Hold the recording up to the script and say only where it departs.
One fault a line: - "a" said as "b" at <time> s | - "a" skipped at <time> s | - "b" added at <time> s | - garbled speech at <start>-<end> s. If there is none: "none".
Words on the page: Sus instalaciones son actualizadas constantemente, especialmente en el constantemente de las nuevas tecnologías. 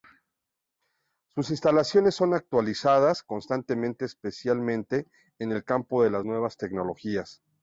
- "constantemente" said as "campo" at 5.6 s